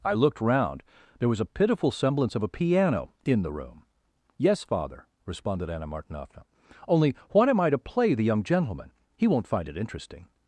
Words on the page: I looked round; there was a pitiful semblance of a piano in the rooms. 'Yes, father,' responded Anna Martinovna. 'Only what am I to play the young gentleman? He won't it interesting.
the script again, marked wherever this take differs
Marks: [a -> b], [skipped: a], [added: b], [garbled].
I looked round; there was a pitiful semblance of a piano in the [rooms. -> room] 'Yes, father,' responded Anna Martinovna. 'Only what am I to play the young gentleman? He won't [added: find] it interesting.